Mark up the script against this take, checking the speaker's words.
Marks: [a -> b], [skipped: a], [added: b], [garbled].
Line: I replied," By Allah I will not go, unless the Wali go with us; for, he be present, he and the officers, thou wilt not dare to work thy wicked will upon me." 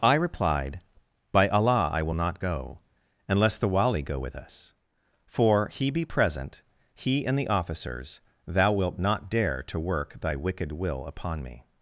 I replied," By Allah I will not go, unless the Wali go with us; for, he be present, he and the officers, thou wilt not dare to work thy wicked will upon me."